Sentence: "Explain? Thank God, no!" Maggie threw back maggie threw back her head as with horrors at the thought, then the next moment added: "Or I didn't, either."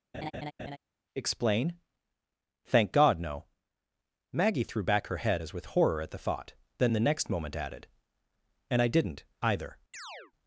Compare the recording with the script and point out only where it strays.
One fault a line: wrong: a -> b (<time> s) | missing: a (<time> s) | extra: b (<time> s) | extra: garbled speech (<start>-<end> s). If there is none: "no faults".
missing: maggie threw back (5.1 s)
wrong: horrors -> horror (5.7 s)
wrong: Or -> And (8.7 s)